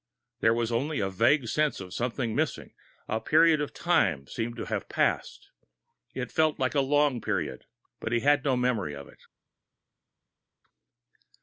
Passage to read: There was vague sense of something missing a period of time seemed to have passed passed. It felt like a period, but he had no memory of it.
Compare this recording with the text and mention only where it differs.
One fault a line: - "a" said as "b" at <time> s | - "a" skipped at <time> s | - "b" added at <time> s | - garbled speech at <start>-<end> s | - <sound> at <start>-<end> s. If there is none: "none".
- "only a" added at 0.7 s
- "passed" skipped at 5.5 s
- "long" added at 6.8 s